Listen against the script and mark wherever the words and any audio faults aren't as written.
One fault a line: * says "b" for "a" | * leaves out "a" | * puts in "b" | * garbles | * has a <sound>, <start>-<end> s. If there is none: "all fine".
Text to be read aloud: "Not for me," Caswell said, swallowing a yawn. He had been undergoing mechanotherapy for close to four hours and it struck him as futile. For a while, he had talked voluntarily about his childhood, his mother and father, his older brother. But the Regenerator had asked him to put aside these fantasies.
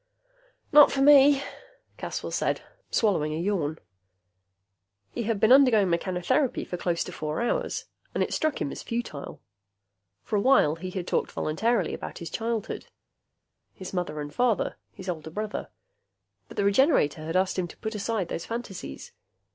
* says "those" for "these"